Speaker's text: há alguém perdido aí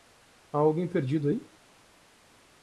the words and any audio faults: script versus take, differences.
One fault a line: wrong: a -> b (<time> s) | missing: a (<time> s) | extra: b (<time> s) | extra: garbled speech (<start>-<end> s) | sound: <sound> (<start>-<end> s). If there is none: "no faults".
no faults